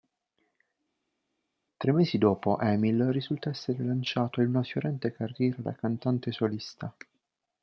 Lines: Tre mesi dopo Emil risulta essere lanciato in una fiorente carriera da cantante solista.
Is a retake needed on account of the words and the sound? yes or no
no